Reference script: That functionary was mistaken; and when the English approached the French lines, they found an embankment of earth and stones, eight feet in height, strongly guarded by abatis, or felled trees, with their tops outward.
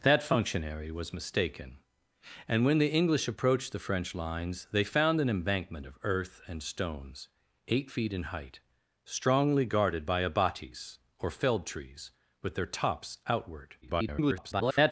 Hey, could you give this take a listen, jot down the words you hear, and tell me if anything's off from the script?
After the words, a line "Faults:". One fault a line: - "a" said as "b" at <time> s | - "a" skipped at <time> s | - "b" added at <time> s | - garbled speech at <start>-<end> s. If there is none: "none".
That functionary was mistaken; and when the English approached the French lines, they found an embankment of earth and stones, eight feet in height, strongly guarded by abatis, or felled trees, with their tops outward. [garbled]
Faults:
- garbled speech at 13.8-14.9 s